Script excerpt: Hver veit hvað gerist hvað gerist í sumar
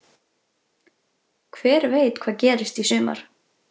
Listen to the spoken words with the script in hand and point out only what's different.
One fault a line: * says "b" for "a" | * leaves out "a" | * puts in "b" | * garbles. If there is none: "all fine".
* leaves out "hvað gerist"